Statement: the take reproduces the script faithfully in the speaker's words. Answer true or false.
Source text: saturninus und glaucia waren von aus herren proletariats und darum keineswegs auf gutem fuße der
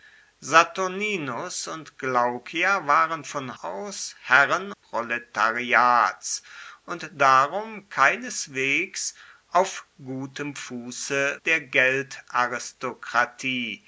true